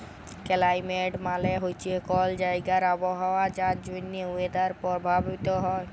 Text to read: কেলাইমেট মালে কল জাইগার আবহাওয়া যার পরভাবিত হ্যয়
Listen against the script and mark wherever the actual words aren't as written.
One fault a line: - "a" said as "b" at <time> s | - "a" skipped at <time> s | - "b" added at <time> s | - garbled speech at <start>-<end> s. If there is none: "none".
- "হছে" added at 1.6 s
- "জ্যনহে ওয়েদার" added at 3.8 s